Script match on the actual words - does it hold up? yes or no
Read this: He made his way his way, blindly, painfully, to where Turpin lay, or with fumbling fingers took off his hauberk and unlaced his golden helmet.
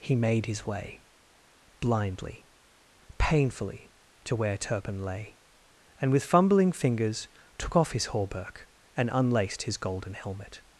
no